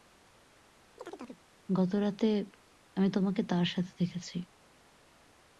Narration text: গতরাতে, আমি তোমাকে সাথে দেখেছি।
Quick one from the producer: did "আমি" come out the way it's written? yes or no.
yes